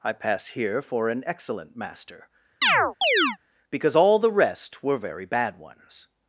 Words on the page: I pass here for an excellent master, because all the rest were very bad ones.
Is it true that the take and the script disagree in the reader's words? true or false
false